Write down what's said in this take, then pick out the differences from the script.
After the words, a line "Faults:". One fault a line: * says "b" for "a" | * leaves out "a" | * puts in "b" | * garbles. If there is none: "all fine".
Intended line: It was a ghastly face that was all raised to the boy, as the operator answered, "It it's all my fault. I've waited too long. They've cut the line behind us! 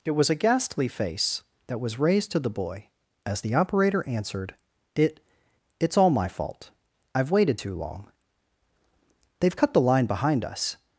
It was a ghastly face that was raised to the boy, as the operator answered, "It it's all my fault. I've waited too long. They've cut the line behind us!
Faults:
* leaves out "all"